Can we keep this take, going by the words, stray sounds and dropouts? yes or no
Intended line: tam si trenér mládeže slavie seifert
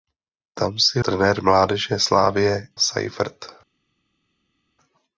yes